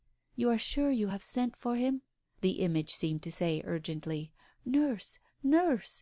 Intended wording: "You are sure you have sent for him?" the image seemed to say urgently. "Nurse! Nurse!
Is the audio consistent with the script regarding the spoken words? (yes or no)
yes